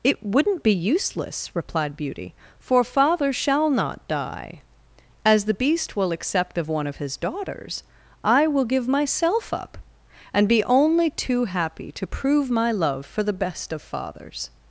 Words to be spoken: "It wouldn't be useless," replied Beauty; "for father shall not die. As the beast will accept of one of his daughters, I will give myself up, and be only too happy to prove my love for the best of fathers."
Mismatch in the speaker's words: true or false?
false